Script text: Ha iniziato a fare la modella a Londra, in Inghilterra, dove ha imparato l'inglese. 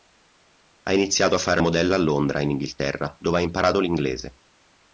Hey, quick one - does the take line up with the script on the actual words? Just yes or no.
no